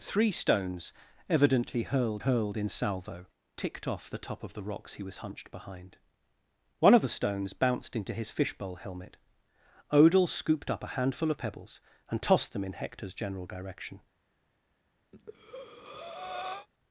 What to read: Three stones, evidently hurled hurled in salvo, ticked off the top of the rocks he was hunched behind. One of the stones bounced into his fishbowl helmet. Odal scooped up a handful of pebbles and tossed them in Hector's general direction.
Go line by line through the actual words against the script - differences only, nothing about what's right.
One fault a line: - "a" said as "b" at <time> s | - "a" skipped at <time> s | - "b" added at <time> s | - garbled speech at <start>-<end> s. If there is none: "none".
none